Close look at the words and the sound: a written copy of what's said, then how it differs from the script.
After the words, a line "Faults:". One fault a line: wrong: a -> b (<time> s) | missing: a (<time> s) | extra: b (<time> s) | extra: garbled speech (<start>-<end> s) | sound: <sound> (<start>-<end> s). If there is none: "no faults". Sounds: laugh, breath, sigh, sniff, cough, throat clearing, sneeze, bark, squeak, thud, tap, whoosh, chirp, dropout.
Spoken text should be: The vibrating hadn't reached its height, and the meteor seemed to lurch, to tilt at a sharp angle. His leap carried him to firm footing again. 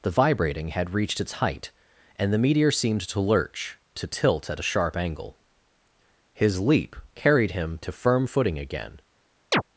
The vibrating had reached its height, and the meteor seemed to lurch, to tilt at a sharp angle. His leap carried him to firm footing again.
Faults:
wrong: hadn't -> had (0.7 s)
sound: chirp (9.5-9.6 s)